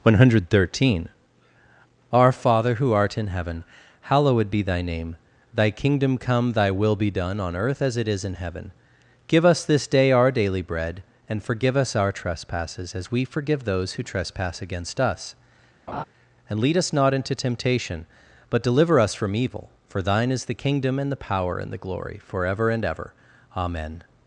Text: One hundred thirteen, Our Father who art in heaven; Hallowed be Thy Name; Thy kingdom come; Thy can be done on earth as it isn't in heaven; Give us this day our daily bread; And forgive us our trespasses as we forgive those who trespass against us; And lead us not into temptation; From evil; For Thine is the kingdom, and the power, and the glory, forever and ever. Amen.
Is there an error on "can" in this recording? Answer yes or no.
yes